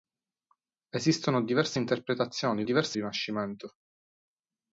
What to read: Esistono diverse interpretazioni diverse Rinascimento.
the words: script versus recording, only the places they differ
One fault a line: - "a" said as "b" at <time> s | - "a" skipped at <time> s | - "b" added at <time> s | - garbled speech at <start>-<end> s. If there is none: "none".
none